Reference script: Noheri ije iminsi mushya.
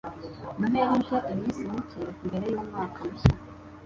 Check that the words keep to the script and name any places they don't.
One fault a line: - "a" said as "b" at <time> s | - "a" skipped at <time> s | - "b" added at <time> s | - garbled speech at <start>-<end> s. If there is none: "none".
- "mike mbere yumwaka" added at 1.7 s